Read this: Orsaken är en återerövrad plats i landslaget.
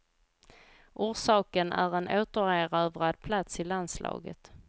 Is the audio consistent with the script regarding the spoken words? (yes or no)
yes